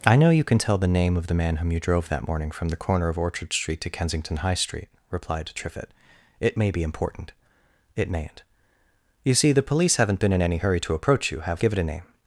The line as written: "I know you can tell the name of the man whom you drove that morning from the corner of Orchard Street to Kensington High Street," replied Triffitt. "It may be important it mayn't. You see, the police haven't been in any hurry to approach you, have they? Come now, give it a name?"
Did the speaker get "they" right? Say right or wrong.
wrong